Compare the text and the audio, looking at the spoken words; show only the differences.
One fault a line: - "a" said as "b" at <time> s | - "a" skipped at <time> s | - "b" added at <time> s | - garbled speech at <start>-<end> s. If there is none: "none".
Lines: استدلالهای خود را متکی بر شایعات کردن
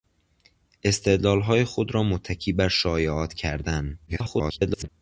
- garbled speech at 4.1-4.9 s